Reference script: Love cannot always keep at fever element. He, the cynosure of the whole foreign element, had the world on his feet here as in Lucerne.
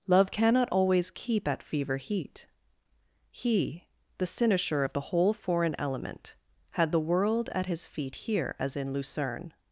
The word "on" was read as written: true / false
false